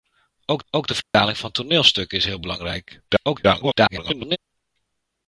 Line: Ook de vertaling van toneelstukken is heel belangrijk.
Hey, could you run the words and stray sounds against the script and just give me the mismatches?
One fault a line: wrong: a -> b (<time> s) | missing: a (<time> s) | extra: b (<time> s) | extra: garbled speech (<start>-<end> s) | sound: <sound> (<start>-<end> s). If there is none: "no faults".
extra: ook (0.7 s)
sound: dropout (1.0-1.1 s)
extra: garbled speech (3.1-4.4 s)